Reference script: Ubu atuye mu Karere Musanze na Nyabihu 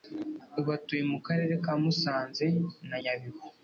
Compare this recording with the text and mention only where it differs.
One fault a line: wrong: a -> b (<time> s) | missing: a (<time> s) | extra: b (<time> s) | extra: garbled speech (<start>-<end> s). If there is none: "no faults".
extra: ka (1.6 s)